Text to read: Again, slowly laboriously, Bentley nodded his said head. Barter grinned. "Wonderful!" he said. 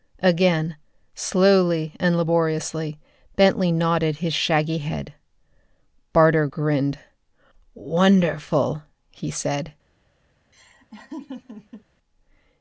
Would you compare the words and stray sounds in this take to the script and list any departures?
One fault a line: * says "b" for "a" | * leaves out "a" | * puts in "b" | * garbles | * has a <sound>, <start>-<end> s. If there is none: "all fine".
* puts in "and"
* says "shaggy" for "said"
* has a laugh, 10.5-11.9 s